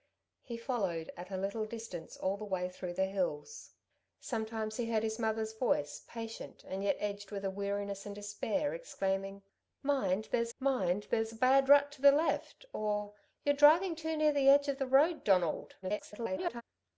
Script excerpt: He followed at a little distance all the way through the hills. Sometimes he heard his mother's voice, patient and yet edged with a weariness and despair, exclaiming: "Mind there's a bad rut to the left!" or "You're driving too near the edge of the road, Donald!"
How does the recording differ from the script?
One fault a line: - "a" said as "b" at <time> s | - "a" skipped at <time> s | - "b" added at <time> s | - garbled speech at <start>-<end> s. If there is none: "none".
- "mind there's" added at 10.6 s
- garbled speech at 15.8-16.6 s